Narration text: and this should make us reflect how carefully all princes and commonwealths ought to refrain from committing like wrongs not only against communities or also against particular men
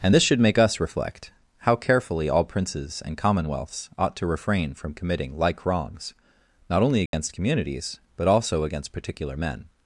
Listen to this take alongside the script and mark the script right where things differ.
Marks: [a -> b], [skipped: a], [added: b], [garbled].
and this should make us reflect how carefully all princes and commonwealths ought to refrain from committing like wrongs not only against communities [or -> but] also against particular men